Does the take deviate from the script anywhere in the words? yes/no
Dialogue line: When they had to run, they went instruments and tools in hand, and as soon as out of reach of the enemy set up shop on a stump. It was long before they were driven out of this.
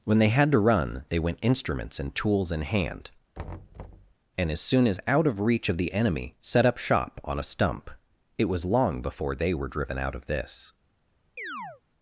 no